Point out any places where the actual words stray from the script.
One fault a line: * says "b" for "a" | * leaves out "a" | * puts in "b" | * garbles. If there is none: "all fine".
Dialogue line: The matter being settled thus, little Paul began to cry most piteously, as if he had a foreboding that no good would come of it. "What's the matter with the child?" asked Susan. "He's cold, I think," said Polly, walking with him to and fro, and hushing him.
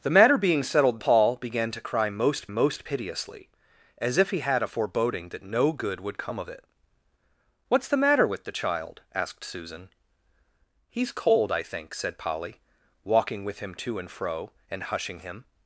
* leaves out "thus little"
* puts in "most"